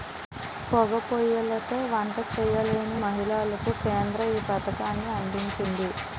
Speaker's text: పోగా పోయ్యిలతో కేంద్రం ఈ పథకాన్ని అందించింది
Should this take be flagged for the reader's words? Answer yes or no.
yes